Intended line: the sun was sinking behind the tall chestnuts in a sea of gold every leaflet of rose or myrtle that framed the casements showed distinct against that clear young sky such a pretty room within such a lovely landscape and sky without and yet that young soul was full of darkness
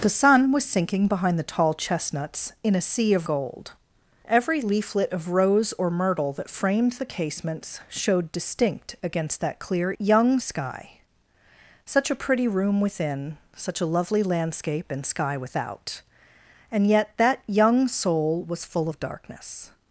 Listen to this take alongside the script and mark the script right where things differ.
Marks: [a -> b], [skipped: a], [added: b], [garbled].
the sun was sinking behind the tall chestnuts in a sea of gold every leaflet of rose or myrtle that framed the casements showed distinct against that clear young sky such a pretty room within such a lovely landscape and sky without and yet that young soul was full of darkness